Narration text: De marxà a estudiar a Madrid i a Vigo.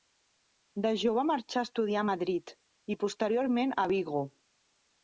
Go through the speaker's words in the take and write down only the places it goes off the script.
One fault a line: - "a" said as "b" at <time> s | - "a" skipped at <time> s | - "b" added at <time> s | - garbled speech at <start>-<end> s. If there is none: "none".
- "jove" added at 1.0 s
- "posteriorment" added at 3.0 s